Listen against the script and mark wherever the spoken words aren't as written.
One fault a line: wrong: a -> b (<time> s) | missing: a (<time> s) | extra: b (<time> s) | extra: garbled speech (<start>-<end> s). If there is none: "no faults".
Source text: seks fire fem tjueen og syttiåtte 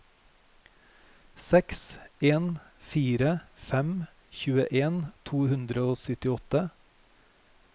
extra: en (2.3 s)
extra: to hundre (5.3 s)